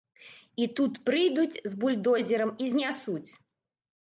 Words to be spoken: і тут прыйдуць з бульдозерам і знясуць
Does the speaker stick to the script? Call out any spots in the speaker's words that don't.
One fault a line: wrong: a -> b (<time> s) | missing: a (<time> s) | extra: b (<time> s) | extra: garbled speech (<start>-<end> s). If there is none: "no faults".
no faults